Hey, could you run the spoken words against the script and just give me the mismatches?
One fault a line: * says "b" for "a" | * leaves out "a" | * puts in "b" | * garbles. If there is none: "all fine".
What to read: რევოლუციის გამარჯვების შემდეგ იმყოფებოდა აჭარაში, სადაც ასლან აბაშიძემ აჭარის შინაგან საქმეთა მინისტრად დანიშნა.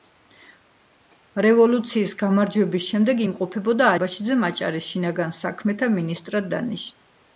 * leaves out "აჭარაში სადაც ასლან"